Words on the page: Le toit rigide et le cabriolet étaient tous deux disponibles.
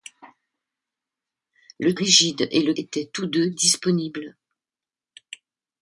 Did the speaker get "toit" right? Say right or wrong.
wrong